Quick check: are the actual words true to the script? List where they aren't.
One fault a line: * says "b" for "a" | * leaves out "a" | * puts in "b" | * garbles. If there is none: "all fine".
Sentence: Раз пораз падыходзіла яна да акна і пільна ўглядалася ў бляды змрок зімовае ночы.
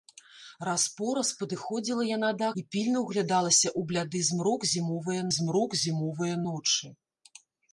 * leaves out "акна"
* puts in "змрок зімовае"